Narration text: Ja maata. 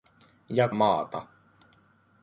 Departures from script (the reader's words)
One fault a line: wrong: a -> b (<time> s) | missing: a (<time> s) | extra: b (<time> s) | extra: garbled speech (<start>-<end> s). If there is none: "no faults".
no faults